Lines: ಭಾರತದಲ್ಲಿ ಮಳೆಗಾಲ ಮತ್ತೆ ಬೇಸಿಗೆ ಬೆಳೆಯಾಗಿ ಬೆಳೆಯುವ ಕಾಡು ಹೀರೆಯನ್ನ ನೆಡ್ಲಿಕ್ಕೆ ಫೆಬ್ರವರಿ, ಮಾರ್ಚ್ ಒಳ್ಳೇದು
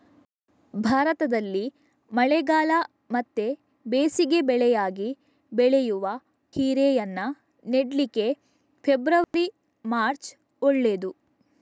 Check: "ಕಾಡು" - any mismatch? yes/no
yes